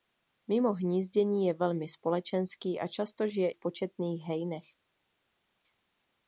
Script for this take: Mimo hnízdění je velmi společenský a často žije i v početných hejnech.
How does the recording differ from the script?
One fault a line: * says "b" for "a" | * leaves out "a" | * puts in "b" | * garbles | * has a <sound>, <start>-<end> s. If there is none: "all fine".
* leaves out "i"